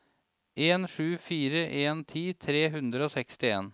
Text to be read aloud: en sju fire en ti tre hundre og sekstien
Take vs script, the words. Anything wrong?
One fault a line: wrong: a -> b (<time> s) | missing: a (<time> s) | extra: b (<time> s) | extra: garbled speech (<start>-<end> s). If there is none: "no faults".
no faults